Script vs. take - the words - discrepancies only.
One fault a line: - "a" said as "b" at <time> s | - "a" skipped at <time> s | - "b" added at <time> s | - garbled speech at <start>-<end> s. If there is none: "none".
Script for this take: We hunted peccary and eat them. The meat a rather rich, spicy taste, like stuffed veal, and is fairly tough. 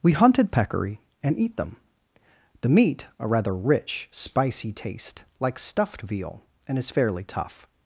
none